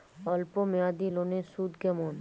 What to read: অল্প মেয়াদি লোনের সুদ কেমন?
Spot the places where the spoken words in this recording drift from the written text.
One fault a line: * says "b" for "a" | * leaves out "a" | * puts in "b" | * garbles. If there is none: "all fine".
all fine